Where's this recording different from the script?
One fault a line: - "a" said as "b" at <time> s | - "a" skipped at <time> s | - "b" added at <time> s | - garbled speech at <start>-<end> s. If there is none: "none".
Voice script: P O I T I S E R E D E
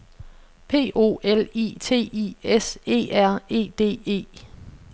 - "L" added at 1.2 s